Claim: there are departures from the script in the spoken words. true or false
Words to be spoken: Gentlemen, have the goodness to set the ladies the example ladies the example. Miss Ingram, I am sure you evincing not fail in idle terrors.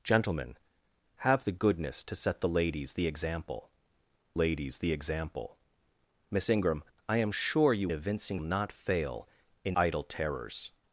false